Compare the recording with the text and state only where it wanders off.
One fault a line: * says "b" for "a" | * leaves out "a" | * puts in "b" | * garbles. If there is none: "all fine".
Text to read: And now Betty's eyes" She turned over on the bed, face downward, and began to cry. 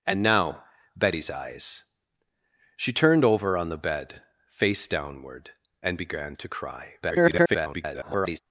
* garbles